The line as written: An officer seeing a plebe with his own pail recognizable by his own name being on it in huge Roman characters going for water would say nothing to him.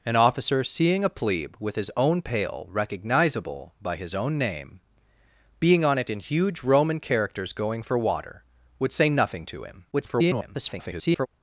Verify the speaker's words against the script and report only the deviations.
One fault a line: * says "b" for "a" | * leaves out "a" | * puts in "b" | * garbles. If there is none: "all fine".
* garbles